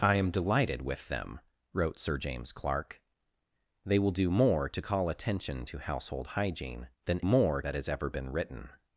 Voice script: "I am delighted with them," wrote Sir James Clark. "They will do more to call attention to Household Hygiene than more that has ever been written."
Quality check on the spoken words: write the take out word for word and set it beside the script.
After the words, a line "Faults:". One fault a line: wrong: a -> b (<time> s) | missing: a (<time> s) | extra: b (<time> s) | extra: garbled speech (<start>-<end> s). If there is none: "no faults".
"I am delighted with them," wrote Sir James Clark. "They will do more to call attention to Household Hygiene than more that has ever been written."
Faults:
no faults